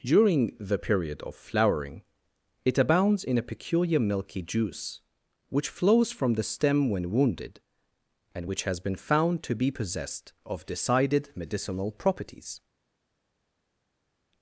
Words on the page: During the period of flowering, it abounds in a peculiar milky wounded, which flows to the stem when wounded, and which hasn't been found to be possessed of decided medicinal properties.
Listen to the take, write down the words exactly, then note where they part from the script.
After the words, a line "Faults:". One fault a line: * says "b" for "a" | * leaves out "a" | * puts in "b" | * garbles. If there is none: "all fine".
During the period of flowering, it abounds in a peculiar milky juice, which flows from the stem when wounded, and which has been found to be possessed of decided medicinal properties.
Faults:
* says "juice" for "wounded"
* says "from" for "to"
* says "has" for "hasn't"